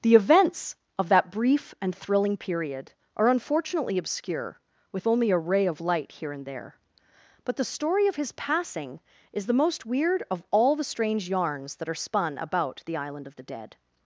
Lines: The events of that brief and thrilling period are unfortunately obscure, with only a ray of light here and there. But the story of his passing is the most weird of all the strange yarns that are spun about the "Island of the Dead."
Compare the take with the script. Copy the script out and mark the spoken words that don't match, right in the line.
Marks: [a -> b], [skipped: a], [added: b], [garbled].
The events of that brief and thrilling period are unfortunately obscure, with only a ray of light here and there. But the story of his passing is the most weird of all the strange yarns that are spun about the "Island of the Dead."